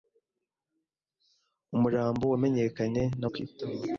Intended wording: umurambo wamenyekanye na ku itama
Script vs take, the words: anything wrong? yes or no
no